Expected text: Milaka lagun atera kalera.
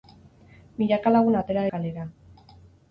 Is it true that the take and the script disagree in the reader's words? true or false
false